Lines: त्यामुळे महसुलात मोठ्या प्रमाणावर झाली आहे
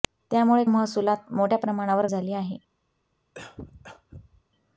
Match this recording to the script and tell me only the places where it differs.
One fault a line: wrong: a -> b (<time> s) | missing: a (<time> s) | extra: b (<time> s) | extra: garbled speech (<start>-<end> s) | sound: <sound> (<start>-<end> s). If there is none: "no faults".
sound: cough (3.3-4.4 s)